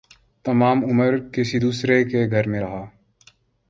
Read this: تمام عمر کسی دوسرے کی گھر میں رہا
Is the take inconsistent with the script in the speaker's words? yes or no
yes